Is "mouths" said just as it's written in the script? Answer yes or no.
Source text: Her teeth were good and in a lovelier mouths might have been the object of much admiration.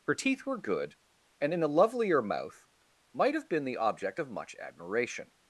no